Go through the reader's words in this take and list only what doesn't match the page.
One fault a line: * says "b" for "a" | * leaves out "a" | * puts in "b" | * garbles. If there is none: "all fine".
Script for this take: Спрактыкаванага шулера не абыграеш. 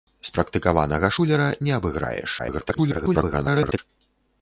* garbles